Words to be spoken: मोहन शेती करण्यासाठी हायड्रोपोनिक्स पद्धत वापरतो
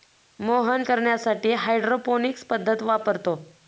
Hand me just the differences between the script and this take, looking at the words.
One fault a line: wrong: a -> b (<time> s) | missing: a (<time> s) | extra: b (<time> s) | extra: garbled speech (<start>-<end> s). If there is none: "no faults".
missing: शेती (0.8 s)